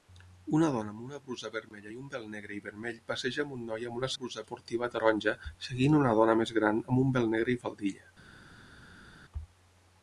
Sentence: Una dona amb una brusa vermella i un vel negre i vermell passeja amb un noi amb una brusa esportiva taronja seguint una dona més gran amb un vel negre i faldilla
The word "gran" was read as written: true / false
true